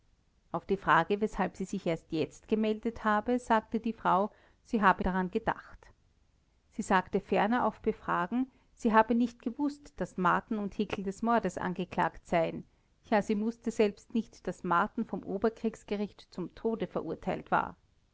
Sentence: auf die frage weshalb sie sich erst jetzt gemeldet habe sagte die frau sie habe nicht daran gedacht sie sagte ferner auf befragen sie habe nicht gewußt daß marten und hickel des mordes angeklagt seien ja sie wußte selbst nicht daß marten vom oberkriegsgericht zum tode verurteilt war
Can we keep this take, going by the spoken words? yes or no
no